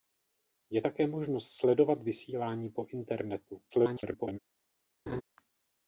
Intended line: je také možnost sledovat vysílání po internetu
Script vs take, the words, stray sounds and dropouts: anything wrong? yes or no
yes